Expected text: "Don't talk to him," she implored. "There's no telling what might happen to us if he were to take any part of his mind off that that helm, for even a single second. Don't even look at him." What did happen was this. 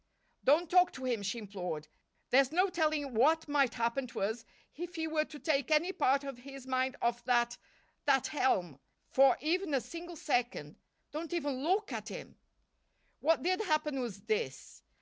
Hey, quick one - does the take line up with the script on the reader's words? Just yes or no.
yes